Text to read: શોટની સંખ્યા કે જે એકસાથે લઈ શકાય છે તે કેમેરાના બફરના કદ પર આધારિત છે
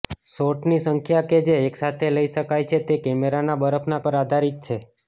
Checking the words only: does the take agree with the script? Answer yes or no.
no